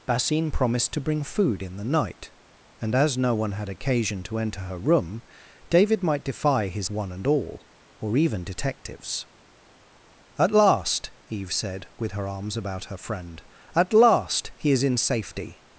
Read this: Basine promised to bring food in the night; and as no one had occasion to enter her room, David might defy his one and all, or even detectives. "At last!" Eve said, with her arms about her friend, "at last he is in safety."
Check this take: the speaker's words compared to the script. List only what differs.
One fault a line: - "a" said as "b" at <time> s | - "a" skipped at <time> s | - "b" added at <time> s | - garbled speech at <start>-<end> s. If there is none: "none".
none